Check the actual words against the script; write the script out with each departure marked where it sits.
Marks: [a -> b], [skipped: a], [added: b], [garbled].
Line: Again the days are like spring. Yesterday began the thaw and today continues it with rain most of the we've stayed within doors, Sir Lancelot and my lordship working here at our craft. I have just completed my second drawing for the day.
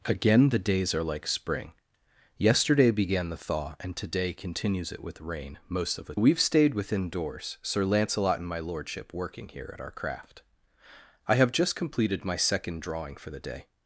Again the days are like spring. Yesterday began the thaw and today continues it with rain most of the we've stayed within doors, Sir Lancelot and my lordship working here at our craft. I have just completed my second drawing for the day.